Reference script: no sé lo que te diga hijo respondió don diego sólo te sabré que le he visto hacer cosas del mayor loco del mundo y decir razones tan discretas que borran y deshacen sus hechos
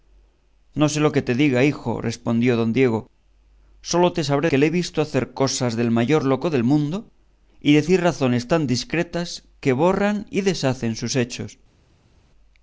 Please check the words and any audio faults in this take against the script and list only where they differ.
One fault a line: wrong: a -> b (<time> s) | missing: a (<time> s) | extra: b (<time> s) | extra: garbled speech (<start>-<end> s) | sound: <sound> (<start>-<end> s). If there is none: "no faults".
no faults